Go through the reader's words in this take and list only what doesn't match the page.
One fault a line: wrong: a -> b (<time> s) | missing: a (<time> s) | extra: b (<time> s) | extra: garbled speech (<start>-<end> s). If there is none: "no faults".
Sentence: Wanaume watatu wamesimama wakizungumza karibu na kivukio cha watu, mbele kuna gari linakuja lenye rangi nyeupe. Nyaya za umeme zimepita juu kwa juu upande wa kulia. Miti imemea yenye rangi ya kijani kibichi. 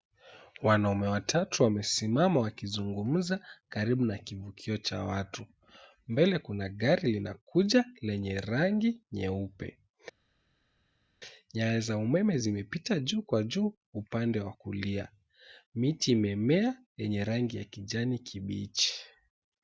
no faults